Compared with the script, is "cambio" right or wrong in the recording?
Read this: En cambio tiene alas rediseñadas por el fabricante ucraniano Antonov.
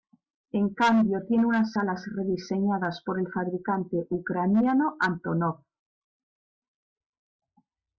right